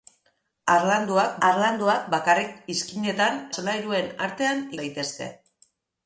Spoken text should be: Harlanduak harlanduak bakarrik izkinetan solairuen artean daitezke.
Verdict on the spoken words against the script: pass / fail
pass